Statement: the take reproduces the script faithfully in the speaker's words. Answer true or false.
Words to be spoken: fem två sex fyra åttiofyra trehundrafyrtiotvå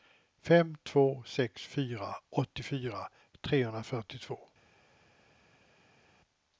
true